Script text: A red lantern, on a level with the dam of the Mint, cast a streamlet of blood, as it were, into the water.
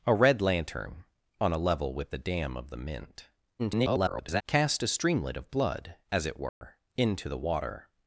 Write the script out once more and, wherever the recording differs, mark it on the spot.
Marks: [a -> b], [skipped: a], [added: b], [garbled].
A red lantern, on a level with the dam of the Mint, [garbled] cast a streamlet of blood, as it were, into the water.